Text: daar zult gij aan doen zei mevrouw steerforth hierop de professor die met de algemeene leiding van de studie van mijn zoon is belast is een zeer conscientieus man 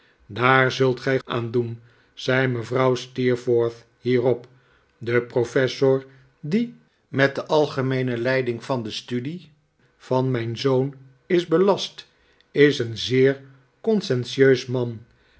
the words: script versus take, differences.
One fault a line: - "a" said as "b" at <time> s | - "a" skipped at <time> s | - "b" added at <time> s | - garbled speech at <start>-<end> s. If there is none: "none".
none